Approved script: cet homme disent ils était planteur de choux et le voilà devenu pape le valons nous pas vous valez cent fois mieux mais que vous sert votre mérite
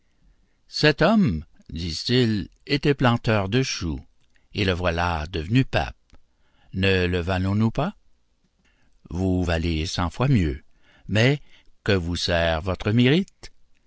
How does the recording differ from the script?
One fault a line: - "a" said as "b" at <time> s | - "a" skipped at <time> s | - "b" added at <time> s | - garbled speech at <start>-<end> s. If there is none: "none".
- "ne" added at 6.7 s